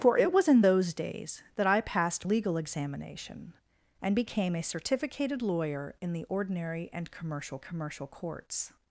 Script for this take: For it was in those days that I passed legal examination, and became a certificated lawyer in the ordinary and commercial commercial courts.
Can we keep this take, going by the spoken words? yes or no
yes